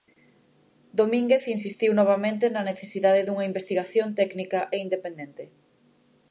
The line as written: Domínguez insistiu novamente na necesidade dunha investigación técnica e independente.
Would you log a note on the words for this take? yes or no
no